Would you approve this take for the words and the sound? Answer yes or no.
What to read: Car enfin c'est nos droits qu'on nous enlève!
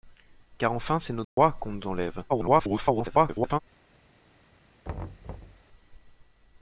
no